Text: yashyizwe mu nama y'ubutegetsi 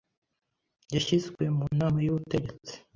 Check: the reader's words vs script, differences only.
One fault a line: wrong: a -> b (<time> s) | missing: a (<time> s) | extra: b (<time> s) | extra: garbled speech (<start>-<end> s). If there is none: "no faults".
no faults